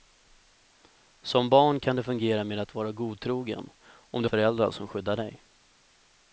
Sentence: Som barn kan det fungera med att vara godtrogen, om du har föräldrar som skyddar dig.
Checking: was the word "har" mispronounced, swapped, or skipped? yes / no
yes